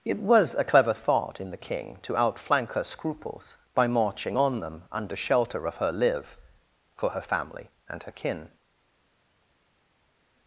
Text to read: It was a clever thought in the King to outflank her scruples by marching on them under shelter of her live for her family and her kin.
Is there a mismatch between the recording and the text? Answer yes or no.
no